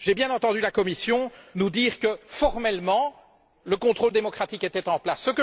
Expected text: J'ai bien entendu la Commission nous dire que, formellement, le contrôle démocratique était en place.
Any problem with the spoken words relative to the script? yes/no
no